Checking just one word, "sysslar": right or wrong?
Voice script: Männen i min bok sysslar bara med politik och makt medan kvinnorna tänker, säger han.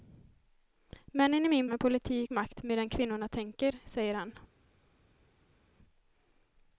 wrong